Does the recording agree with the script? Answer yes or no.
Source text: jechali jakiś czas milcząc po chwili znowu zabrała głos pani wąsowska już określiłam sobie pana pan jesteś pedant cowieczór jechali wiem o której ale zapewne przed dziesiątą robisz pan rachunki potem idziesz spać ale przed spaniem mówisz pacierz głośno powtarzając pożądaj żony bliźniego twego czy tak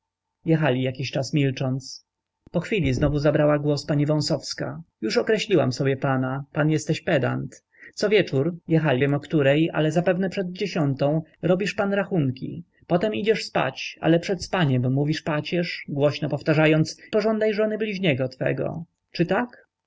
yes